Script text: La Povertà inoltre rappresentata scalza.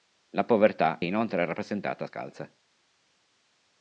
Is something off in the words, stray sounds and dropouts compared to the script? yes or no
no